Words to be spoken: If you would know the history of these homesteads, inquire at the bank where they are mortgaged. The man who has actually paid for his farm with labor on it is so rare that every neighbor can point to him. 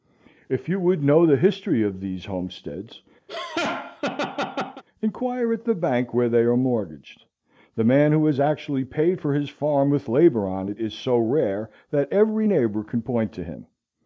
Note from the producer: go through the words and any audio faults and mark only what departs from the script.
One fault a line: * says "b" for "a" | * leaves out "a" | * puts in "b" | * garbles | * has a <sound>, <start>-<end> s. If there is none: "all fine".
* has a laugh, 3.3-4.8 s